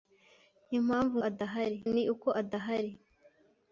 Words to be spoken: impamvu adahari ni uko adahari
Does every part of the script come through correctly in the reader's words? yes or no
yes